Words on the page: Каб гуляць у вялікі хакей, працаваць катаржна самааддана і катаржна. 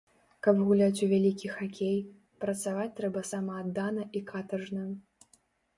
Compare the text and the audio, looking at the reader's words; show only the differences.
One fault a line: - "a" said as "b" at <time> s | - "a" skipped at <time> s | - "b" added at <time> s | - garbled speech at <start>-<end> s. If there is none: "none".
- "катаржна" said as "трэба" at 3.0 s